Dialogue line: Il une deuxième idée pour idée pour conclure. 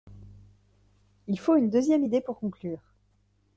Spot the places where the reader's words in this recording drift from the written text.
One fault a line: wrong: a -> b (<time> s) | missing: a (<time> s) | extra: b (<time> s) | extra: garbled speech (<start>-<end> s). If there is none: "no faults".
extra: faut (1.4 s)
missing: idée pour (2.4 s)